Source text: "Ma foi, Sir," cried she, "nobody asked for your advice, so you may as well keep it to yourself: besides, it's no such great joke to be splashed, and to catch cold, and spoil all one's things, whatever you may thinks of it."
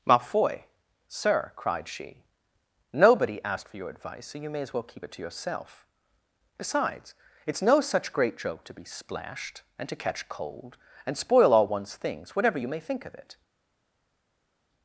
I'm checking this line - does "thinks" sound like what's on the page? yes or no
no